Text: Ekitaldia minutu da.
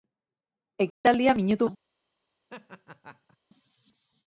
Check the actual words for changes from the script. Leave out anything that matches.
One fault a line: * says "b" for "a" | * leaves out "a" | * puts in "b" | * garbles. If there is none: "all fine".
all fine